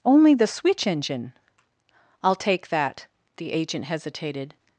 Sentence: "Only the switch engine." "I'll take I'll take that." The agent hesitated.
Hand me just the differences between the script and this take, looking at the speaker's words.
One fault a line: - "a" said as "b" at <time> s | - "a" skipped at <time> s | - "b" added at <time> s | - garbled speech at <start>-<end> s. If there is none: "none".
- "I'll take" skipped at 2.7 s